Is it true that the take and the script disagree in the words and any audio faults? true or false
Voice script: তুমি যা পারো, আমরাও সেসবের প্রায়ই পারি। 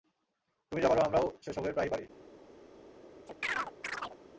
true